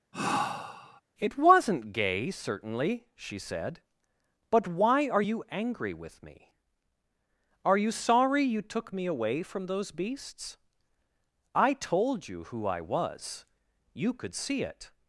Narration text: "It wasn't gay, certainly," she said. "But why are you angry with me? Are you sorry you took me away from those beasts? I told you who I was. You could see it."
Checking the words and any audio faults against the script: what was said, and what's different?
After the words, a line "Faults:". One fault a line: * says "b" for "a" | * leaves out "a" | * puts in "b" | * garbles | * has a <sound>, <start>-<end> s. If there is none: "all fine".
"It wasn't gay, certainly," she said. "But why are you angry with me? Are you sorry you took me away from those beasts? I told you who I was. You could see it."
Faults:
* has a sigh, 0.1-1.0 s